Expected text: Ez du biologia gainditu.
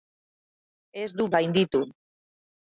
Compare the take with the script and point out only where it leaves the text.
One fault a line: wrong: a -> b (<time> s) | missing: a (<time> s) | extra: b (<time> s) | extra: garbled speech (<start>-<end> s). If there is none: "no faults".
missing: biologia (1.3 s)